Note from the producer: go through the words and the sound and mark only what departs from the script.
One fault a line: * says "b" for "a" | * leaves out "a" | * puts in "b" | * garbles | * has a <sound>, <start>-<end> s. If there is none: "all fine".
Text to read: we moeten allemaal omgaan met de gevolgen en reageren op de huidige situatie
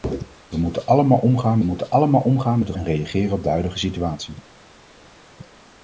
* puts in "moeten allemaal omgaan"
* leaves out "gevolgen"